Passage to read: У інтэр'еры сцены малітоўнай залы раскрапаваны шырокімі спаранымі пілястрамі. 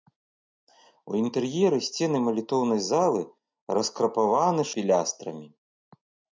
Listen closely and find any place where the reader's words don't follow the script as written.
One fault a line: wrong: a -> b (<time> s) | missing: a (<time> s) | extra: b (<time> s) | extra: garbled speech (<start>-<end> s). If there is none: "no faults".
missing: шырокімі спаранымі (4.7 s)